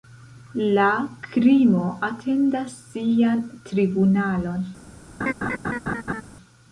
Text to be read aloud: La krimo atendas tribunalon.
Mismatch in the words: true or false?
true